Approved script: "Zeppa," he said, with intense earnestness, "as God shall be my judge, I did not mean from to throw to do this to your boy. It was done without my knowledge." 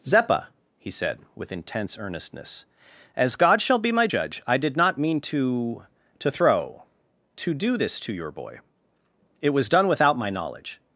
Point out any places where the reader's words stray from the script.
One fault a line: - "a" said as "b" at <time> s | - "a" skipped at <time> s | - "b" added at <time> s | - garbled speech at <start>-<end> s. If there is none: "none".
- "from" said as "to" at 5.2 s